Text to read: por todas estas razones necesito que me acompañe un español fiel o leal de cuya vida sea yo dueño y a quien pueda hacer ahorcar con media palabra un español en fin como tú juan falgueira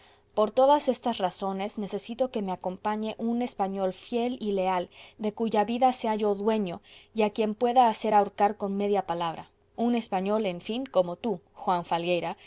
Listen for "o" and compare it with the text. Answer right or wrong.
wrong